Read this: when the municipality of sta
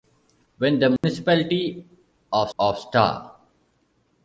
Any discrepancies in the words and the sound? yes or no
yes